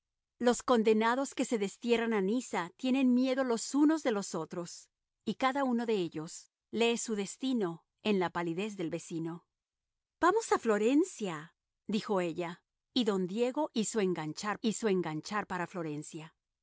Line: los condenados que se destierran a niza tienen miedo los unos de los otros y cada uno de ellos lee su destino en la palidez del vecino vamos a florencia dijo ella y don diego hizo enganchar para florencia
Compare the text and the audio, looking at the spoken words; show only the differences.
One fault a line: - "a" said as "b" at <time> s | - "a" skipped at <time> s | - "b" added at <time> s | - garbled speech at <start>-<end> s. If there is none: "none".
- "hizo enganchar" added at 14.6 s